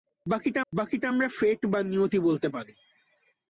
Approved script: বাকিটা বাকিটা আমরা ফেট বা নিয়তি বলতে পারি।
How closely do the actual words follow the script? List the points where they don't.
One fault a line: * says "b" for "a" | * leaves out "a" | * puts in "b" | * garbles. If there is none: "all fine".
all fine